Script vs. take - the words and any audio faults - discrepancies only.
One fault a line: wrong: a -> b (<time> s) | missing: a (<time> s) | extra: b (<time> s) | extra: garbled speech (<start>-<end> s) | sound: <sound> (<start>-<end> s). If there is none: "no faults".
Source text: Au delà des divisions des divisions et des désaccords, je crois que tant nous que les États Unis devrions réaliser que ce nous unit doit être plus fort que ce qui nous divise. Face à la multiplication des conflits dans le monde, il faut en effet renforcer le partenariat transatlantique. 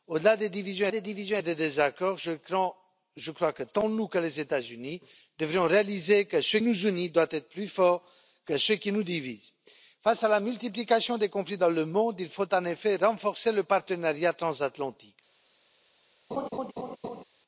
sound: laugh (16.3-17.2 s)